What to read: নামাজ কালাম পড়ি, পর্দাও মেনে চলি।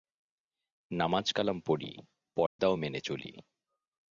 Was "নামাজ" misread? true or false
false